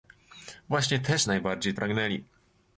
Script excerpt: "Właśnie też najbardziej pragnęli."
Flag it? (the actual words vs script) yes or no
no